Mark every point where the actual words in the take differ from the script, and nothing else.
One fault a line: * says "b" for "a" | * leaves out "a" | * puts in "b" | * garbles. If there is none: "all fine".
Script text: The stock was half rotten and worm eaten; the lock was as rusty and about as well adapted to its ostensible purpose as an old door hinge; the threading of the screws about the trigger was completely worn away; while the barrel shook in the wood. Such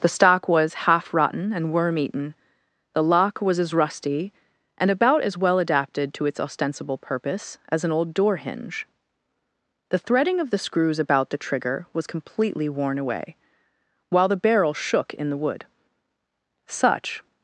all fine